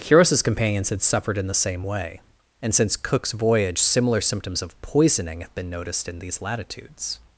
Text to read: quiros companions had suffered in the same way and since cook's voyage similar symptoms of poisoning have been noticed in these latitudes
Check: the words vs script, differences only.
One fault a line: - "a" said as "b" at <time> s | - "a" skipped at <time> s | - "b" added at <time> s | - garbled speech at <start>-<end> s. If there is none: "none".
none